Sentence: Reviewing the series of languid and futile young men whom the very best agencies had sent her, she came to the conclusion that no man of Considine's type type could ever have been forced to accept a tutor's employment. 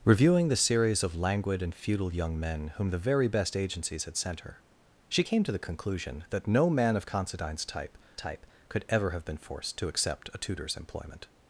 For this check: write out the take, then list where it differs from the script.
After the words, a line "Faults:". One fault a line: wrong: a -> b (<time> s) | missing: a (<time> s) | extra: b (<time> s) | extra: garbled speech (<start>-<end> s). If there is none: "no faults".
Reviewing the series of languid and futile young men whom the very best agencies had sent her, she came to the conclusion that no man of Considine's type type could ever have been forced to accept a tutor's employment.
Faults:
no faults